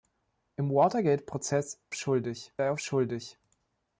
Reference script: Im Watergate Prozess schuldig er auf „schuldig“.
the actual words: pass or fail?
pass